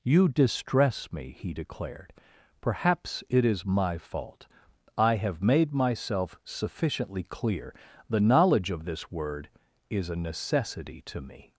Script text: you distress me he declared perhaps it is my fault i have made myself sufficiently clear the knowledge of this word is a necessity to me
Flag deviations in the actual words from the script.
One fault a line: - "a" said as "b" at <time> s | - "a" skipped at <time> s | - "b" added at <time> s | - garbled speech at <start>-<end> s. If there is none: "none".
none